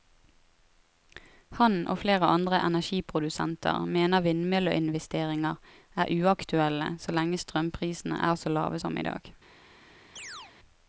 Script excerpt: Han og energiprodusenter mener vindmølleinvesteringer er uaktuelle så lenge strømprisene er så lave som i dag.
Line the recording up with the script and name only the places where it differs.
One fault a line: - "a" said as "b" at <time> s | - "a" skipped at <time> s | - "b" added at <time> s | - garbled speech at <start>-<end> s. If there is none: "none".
- "flere andre" added at 2.0 s